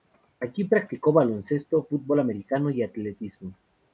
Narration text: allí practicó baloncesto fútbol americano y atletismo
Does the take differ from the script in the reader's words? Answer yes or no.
no